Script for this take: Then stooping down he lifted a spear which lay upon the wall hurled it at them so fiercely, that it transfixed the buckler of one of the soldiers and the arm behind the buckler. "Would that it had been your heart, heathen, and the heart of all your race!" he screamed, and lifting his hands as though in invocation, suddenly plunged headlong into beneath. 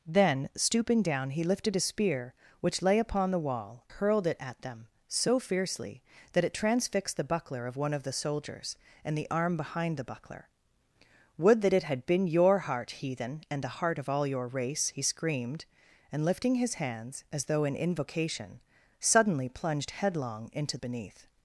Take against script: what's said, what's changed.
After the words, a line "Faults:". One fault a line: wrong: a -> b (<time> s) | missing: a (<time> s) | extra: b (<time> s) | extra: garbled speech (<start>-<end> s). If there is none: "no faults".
Then stooping down he lifted a spear which lay upon the wall hurled it at them so fiercely, that it transfixed the buckler of one of the soldiers and the arm behind the buckler. "Would that it had been your heart, heathen, and the heart of all your race!" he screamed, and lifting his hands as though in invocation, suddenly plunged headlong into beneath.
Faults:
no faults